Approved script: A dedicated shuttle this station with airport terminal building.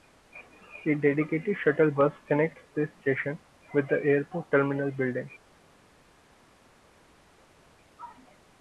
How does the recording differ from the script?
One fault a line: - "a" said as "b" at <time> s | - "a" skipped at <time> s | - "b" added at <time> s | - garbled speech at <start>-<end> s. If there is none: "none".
- "bus connects" added at 1.9 s
- "the" added at 3.9 s